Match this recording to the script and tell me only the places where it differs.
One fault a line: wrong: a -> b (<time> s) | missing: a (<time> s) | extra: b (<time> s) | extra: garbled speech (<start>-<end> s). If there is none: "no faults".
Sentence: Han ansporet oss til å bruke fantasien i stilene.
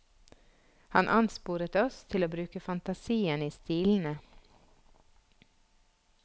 no faults